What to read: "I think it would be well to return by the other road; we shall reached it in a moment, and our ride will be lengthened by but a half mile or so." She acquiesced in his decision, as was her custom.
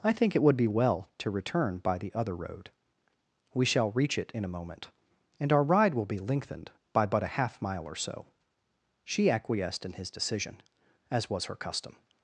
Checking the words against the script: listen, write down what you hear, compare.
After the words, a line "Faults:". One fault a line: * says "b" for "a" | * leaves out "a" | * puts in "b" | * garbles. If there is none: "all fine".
"I think it would be well to return by the other road; we shall reach it in a moment, and our ride will be lengthened by but a half mile or so." She acquiesced in his decision, as was her custom.
Faults:
* says "reach" for "reached"